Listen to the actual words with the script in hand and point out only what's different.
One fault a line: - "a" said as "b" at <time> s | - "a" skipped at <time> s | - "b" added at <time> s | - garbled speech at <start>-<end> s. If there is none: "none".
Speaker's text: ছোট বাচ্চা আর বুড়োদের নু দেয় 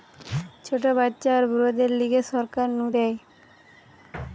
- "লিগে সরকার" added at 2.0 s